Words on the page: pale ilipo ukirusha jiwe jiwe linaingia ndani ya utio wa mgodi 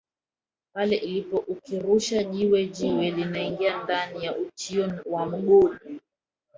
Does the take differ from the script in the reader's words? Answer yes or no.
no